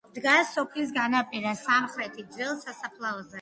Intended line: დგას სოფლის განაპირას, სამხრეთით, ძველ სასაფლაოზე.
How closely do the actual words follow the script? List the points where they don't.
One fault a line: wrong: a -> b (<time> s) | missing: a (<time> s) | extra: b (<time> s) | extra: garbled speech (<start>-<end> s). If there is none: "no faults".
no faults